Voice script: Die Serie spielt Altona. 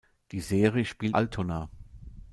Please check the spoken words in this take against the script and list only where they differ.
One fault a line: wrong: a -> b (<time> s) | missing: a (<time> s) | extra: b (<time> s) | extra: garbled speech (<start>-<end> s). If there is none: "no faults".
no faults